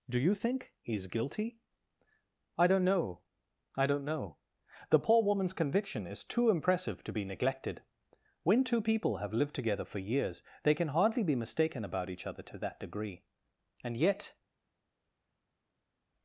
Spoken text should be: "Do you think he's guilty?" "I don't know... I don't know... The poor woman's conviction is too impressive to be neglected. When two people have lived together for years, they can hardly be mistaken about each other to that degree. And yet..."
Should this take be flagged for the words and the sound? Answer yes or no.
no